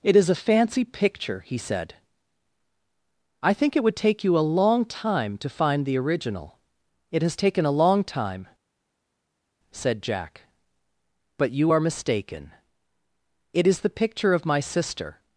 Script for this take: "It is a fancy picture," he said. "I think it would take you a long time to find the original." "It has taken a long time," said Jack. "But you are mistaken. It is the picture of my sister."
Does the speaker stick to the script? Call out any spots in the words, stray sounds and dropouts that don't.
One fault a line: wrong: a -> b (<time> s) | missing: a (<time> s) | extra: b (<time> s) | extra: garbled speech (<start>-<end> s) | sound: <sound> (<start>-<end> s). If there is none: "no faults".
no faults